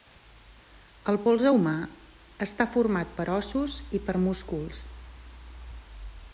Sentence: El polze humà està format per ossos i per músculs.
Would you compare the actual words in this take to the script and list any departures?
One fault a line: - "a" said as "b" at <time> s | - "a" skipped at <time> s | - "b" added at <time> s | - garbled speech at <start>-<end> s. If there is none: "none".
none